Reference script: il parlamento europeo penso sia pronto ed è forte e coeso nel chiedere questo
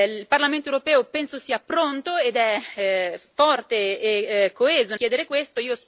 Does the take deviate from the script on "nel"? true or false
true